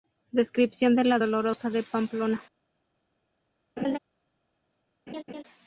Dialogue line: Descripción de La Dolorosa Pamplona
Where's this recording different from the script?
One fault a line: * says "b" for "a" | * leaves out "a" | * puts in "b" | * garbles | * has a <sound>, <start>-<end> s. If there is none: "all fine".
* puts in "de"
* has a laugh, 3.8-4.0 s
* has a laugh, 5.1-5.4 s